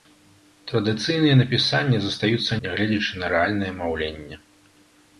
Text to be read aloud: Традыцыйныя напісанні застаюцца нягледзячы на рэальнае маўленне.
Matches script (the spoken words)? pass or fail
pass